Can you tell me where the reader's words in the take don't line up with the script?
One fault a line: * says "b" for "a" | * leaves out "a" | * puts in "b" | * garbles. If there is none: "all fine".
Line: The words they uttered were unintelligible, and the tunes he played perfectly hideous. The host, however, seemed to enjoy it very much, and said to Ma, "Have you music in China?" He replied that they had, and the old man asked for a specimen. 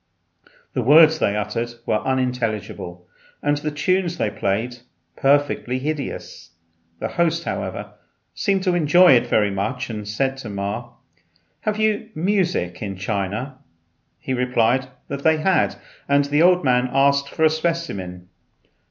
* says "they" for "he"